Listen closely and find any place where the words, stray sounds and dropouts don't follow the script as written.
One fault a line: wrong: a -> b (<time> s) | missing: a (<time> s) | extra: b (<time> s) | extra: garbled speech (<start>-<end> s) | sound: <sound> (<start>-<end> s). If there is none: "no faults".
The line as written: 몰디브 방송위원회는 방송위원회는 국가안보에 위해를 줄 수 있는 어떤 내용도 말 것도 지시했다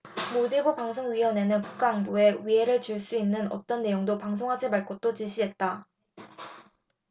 missing: 방송위원회는 (1.6 s)
extra: 방송하지 (4.2 s)